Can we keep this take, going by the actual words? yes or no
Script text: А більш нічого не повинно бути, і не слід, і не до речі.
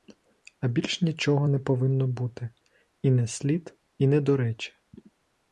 yes